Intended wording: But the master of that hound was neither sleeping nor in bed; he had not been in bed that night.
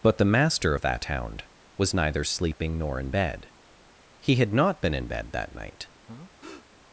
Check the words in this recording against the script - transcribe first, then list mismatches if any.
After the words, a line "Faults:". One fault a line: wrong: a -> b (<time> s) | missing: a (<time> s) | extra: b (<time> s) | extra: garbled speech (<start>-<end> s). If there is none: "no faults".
But the master of that hound was neither sleeping nor in bed; he had not been in bed that night.
Faults:
no faults